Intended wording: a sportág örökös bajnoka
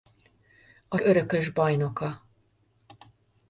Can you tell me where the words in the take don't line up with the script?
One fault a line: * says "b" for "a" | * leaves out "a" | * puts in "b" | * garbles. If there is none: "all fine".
* leaves out "sportág"